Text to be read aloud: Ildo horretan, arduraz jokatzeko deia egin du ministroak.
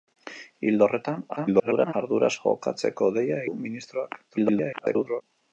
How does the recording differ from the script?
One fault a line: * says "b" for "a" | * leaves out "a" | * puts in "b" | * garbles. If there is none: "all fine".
* garbles
* leaves out "egin"
* garbles